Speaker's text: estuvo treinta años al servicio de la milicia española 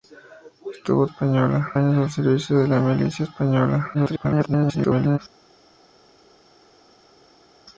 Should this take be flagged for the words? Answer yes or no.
yes